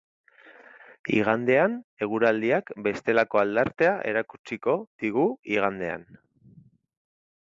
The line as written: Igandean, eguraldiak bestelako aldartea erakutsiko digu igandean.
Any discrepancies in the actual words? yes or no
no